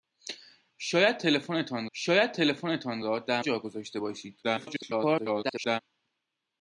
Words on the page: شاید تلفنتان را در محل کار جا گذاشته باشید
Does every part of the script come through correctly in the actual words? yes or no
no